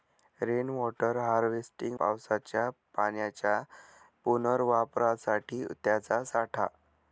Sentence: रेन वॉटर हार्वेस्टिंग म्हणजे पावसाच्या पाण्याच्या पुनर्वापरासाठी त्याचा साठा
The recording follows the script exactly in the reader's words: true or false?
false